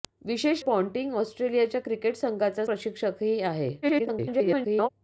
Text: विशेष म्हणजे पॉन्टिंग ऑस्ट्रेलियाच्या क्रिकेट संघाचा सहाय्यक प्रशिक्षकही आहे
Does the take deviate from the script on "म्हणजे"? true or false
true